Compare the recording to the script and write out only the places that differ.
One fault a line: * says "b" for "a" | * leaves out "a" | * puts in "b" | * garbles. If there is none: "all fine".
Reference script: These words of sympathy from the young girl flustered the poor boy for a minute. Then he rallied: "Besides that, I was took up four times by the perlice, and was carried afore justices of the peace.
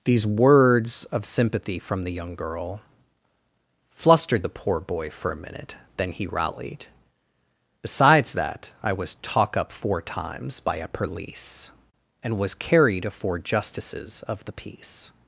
* says "talk" for "took"
* says "a" for "the"